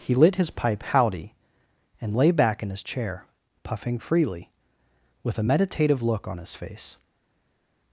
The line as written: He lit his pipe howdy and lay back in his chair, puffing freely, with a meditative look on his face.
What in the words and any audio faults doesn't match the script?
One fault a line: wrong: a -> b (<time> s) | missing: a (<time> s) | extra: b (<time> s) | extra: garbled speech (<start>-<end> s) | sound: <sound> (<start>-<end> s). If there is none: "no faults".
no faults